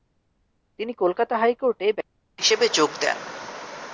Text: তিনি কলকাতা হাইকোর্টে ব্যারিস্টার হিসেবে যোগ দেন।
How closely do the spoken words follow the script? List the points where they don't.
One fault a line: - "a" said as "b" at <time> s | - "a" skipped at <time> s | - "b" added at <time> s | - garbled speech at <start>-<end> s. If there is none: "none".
none